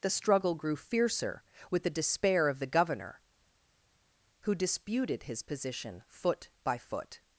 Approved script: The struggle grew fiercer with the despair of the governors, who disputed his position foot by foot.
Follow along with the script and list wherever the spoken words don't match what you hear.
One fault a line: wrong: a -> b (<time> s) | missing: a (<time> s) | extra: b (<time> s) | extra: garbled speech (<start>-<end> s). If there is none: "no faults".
wrong: governors -> governor (2.7 s)